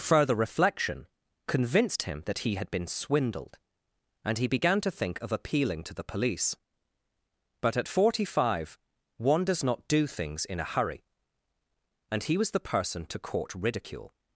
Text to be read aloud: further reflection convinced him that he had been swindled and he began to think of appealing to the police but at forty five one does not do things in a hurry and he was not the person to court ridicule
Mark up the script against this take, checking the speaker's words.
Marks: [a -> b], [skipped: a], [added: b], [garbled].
further reflection convinced him that he had been swindled and he began to think of appealing to the police but at forty five one does not do things in a hurry and he was [skipped: not] the person to court ridicule